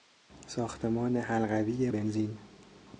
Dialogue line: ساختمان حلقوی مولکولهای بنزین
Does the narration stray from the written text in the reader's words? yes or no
yes